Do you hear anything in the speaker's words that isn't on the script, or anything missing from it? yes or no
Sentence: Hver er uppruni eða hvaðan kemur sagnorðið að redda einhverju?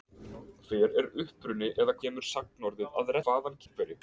yes